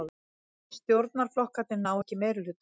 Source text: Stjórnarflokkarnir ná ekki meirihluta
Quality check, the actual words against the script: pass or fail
pass